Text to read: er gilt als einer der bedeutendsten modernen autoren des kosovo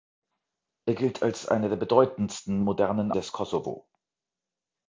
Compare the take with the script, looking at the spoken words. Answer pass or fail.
fail